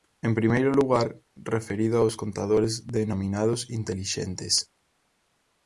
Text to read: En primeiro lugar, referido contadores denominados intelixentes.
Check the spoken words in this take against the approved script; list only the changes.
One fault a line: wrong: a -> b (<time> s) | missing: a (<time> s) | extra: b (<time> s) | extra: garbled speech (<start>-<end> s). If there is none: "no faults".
extra: aos (2.0 s)